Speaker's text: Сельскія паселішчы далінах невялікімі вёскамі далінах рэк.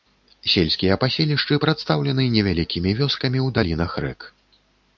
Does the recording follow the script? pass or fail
fail